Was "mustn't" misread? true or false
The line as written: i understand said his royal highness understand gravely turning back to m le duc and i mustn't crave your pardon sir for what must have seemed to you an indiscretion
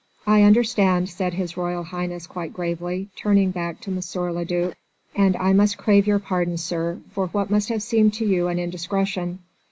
true